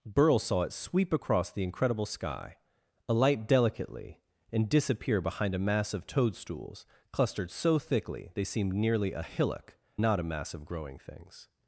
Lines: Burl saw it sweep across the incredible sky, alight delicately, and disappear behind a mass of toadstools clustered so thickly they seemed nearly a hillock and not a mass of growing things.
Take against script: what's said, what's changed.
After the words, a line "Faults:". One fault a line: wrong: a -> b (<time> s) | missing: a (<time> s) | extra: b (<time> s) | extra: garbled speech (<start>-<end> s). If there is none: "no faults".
Burl saw it sweep across the incredible sky, alight delicately, and disappear behind a mass of toadstools clustered so thickly they seemed nearly a hillock not a mass of growing things.
Faults:
missing: and (9.8 s)